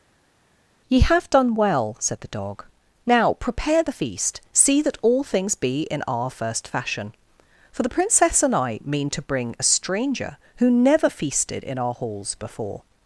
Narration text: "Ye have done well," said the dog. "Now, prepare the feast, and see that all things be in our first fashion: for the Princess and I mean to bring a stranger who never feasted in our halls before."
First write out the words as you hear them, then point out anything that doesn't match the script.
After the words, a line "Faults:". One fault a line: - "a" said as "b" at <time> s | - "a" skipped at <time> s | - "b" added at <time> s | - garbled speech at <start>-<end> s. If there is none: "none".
"Ye have done well," said the dog. "Now, prepare the feast, see that all things be in our first fashion: for the Princess and I mean to bring a stranger who never feasted in our halls before."
Faults:
- "and" skipped at 4.4 s